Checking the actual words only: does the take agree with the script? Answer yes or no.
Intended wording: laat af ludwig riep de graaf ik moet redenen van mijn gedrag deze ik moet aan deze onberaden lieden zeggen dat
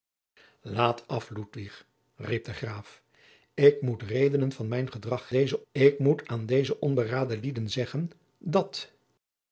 yes